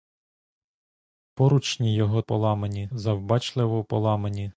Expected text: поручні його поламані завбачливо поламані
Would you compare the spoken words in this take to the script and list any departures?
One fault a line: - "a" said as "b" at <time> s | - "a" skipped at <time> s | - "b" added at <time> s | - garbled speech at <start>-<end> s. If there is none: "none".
none